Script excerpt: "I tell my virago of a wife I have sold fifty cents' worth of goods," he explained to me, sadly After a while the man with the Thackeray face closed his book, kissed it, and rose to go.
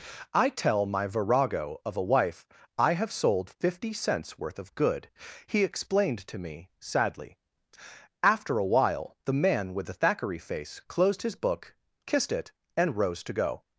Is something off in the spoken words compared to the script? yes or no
yes